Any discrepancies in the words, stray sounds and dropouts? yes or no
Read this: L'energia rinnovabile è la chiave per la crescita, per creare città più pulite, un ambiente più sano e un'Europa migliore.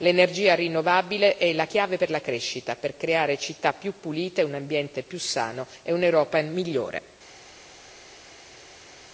no